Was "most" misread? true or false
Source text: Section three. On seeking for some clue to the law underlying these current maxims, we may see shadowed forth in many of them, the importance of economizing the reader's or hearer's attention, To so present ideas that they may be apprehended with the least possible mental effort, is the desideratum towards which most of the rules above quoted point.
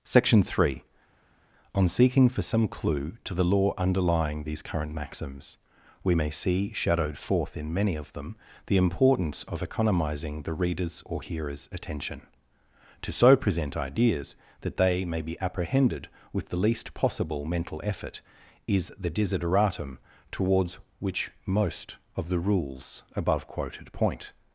false